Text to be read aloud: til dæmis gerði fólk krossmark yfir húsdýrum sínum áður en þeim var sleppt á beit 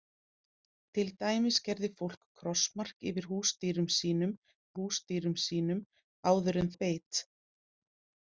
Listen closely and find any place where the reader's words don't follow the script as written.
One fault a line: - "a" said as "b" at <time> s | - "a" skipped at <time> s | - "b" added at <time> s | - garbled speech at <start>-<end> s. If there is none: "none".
- "húsdýrum sínum" added at 4.8 s
- "þeim var sleppt" skipped at 6.7 s